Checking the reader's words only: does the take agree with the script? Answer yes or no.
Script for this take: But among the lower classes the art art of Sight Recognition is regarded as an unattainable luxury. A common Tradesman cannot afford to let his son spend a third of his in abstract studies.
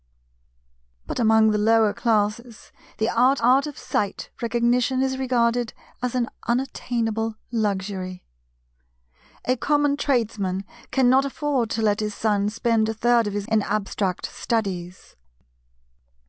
yes